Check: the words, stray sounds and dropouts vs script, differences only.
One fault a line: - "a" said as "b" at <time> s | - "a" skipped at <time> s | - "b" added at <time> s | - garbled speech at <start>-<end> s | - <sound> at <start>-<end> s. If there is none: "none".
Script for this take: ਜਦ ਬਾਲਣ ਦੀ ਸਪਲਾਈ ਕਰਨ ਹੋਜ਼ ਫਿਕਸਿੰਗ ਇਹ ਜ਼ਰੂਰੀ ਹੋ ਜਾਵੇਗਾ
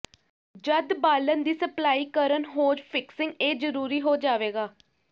none